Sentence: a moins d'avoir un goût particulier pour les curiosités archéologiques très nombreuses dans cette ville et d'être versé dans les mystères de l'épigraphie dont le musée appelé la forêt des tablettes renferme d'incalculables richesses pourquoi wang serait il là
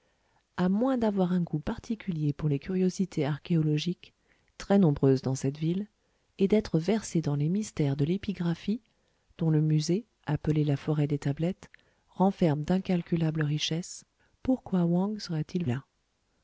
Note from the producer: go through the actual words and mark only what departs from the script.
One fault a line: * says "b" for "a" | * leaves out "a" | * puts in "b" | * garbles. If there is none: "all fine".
all fine